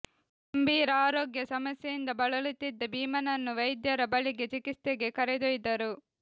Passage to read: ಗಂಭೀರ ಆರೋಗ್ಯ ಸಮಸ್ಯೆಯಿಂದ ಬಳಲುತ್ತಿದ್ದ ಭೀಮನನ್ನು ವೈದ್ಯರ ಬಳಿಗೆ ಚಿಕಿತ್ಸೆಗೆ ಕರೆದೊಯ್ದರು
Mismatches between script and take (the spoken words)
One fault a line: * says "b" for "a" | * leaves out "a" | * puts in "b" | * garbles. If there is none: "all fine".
all fine